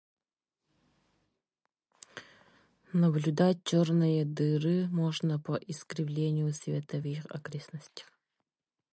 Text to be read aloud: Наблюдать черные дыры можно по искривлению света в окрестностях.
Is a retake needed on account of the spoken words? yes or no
yes